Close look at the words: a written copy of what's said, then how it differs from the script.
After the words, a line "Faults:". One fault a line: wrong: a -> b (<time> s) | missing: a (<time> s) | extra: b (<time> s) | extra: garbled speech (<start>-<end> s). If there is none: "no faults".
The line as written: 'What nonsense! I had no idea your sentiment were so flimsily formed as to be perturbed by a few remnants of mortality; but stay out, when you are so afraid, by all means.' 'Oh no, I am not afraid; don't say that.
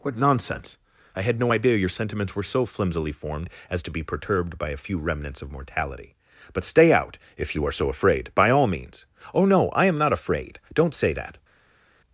'What nonsense! I had no idea your sentiments were so flimsily formed as to be perturbed by a few remnants of mortality; but stay out, if you are so afraid, by all means.' 'Oh no, I am not afraid; don't say that.
Faults:
wrong: sentiment -> sentiments (1.9 s)
wrong: when -> if (7.4 s)